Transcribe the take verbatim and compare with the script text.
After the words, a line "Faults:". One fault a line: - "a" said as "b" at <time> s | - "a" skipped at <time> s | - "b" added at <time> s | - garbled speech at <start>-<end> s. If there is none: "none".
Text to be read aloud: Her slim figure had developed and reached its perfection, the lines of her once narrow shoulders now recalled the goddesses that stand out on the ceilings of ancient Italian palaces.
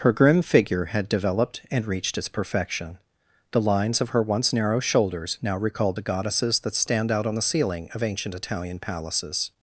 Her grim figure had developed and reached its perfection, the lines of her once narrow shoulders now recalled the goddesses that stand out on the ceiling of ancient Italian palaces.
Faults:
- "slim" said as "grim" at 0.1 s
- "ceilings" said as "ceiling" at 7.4 s